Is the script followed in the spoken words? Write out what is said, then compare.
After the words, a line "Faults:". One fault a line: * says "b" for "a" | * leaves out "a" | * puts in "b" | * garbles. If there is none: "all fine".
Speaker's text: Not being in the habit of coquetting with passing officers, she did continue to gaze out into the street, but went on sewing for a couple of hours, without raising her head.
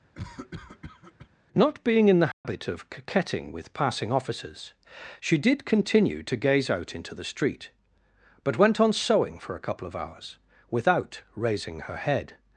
Not being in the habit of coquetting with passing officers, she did continue to gaze out into the street, but went on sewing for a couple of hours, without raising her head.
Faults:
all fine